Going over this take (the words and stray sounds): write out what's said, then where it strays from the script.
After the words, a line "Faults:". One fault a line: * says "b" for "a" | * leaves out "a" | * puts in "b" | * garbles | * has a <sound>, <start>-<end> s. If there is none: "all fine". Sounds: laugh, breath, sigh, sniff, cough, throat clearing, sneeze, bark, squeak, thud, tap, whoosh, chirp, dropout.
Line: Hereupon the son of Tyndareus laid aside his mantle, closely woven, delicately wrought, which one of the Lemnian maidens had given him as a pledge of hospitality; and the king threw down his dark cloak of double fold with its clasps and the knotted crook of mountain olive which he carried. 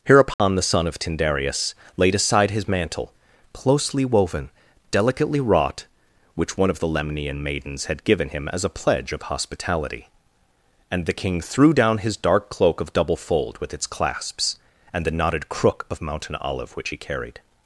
Hereupon the son of Tyndareus laid aside his mantle, closely woven, delicately wrought, which one of the Lemnian maidens had given him as a pledge of hospitality; and the king threw down his dark cloak of double fold with its clasps and the knotted crook of mountain olive which he carried.
Faults:
* has a dropout, 0.3-0.4 s